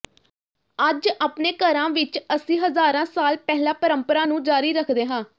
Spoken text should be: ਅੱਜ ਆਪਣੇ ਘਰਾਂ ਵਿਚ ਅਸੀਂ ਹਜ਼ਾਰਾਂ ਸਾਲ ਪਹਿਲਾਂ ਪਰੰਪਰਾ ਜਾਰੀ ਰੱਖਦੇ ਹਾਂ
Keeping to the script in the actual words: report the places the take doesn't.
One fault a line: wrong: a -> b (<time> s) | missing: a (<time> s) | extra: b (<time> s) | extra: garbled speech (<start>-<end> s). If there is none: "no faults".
extra: ਨੂੰ (4.2 s)